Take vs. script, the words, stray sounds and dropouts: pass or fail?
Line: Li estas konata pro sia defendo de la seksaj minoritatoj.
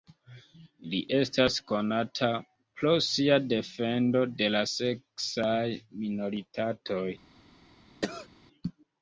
fail